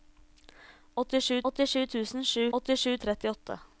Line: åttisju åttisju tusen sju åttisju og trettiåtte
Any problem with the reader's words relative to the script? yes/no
no